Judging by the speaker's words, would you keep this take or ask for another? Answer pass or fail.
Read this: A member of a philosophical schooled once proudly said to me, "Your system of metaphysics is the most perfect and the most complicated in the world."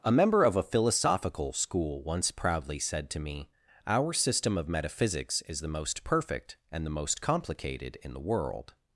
fail